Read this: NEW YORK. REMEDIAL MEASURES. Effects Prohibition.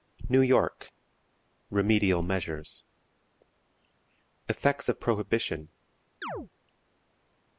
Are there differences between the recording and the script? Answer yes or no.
yes